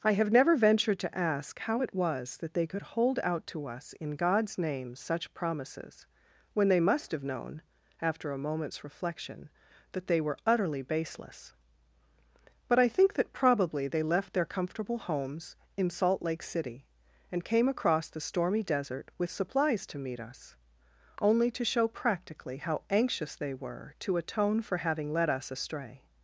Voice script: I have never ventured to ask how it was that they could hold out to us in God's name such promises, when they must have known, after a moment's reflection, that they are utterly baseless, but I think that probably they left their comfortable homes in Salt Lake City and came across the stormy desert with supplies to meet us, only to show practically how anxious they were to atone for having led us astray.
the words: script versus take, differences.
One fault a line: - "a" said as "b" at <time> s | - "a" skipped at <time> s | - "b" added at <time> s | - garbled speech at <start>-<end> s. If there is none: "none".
- "are" said as "were" at 10.2 s